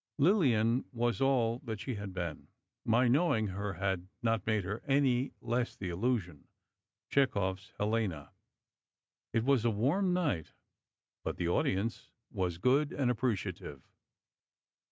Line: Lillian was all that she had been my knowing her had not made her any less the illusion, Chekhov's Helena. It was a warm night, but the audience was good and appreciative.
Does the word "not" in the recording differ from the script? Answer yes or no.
no